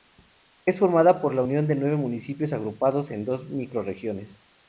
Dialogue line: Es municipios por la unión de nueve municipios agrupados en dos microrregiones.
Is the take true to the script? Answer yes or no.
no